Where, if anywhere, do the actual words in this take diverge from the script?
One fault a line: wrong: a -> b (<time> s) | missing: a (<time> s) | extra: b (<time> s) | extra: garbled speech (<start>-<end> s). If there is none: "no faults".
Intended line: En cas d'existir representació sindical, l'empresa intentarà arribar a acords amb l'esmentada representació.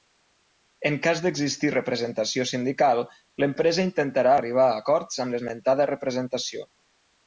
no faults